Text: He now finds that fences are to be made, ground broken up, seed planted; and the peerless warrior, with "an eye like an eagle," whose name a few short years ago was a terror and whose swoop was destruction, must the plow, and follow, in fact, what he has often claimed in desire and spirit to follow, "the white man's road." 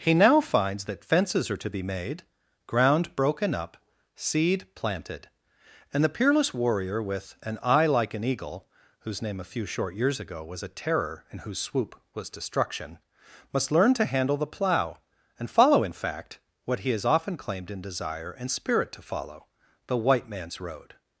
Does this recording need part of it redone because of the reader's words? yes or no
yes